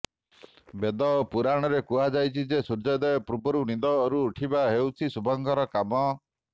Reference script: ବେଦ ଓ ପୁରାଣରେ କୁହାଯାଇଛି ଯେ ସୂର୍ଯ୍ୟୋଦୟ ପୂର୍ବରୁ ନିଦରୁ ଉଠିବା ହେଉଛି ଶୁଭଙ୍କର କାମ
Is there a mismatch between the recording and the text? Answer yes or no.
no